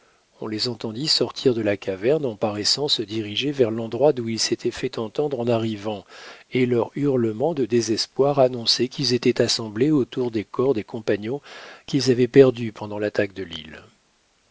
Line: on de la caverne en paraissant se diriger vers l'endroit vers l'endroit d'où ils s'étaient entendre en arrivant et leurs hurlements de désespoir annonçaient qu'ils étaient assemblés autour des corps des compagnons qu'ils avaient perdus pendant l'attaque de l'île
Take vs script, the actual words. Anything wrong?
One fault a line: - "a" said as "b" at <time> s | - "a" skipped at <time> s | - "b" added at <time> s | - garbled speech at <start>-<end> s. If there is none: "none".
- "les entendit sortir" added at 0.5 s
- "vers l'endroit" skipped at 4.1 s
- "fait" added at 4.7 s